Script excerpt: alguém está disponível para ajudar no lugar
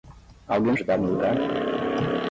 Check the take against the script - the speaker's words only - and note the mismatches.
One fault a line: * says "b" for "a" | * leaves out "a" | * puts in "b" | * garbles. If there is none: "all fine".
* leaves out "está disponível para"